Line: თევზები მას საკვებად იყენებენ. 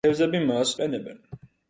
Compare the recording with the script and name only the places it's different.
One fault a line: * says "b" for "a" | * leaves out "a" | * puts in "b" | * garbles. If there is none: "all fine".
* leaves out "საკვებად"